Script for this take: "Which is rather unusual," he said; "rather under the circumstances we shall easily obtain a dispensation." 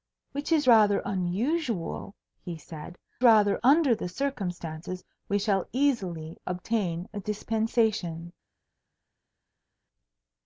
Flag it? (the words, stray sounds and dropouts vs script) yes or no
no